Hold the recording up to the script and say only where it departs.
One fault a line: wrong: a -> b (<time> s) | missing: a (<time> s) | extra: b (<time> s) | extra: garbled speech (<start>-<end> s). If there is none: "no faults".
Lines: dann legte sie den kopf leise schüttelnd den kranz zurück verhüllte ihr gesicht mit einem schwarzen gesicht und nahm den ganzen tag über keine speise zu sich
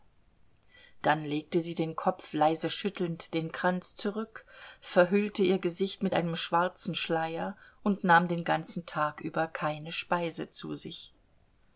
wrong: gesicht -> schleier (7.0 s)